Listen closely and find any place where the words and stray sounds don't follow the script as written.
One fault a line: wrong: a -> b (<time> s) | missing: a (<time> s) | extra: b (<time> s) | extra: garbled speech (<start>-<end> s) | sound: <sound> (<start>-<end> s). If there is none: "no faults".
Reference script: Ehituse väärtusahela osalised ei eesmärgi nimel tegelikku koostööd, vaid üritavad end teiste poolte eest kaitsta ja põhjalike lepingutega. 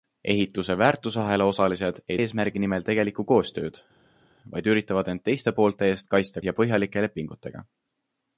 no faults